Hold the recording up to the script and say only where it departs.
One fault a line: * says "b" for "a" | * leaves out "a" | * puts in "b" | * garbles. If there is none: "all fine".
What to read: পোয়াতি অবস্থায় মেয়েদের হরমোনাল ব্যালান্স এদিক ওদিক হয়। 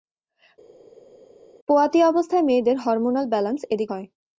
* leaves out "ওদিক"